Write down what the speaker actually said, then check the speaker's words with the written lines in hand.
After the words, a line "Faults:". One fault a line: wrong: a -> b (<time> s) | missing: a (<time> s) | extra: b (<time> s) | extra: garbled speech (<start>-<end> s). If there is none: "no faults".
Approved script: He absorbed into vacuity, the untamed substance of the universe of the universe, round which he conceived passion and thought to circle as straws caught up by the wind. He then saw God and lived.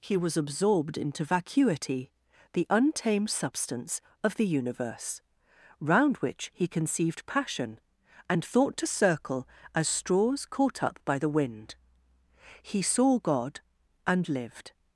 He was absorbed into vacuity, the untamed substance of the universe, round which he conceived passion and thought to circle as straws caught up by the wind. He saw God and lived.
Faults:
extra: was (0.2 s)
missing: of the universe (5.2 s)
missing: then (12.8 s)